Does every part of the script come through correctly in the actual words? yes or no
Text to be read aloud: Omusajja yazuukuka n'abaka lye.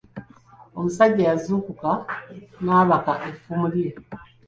no